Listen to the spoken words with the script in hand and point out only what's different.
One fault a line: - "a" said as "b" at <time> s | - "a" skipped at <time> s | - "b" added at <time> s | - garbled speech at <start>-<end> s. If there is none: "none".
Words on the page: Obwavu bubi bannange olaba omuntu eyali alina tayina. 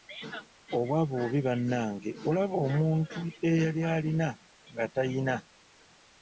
- "nga" added at 4.7 s